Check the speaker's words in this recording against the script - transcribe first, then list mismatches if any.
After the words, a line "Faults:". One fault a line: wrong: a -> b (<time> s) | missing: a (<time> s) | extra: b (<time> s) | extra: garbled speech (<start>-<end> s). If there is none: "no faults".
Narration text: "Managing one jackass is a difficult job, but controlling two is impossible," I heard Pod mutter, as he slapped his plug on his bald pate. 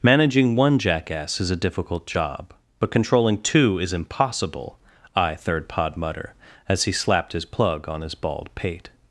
"Managing one jackass is a difficult job, but controlling two is impossible," I third Pod mutter, as he slapped his plug on his bald pate.
Faults:
wrong: heard -> third (5.3 s)